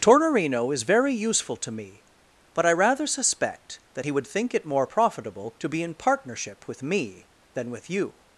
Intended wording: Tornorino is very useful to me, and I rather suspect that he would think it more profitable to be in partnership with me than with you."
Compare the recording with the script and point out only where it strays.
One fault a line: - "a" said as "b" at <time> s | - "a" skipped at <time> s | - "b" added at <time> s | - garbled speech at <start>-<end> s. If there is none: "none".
- "and" said as "but" at 2.5 s